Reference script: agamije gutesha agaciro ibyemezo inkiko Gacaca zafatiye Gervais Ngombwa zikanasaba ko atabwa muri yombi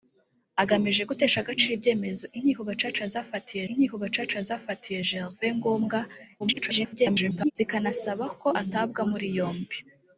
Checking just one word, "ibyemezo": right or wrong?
right